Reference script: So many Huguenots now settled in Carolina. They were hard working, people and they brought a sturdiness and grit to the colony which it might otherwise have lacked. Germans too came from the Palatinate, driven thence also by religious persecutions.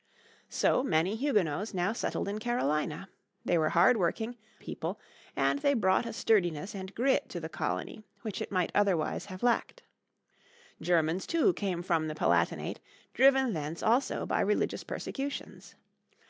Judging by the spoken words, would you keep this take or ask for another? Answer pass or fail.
pass